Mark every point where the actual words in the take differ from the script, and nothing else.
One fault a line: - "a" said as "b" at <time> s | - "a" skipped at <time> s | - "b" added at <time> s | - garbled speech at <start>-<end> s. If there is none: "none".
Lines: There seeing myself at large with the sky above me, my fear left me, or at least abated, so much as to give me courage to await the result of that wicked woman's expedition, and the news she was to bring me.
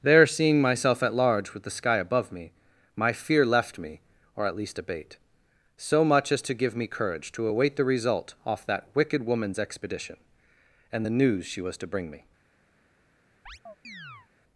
- "abated" said as "abate" at 4.8 s
- "of" said as "off" at 8.5 s